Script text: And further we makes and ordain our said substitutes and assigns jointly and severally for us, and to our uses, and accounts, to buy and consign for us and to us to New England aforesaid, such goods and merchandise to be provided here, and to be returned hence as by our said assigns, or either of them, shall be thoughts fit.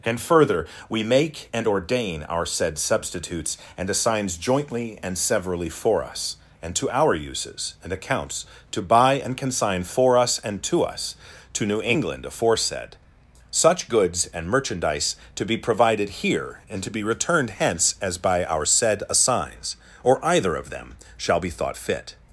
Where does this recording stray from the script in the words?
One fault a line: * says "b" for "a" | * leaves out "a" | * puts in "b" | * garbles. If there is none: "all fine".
* says "make" for "makes"
* says "thought" for "thoughts"